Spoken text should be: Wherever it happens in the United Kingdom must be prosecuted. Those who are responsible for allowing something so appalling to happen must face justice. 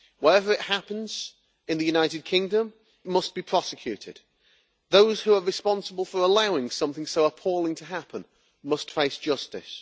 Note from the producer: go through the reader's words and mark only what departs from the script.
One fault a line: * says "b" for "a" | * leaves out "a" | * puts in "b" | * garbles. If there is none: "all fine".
all fine